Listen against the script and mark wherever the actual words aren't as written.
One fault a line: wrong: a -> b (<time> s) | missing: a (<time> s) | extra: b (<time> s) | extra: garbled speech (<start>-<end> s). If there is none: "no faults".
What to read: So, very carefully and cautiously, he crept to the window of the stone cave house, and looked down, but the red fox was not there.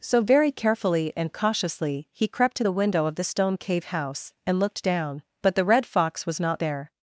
no faults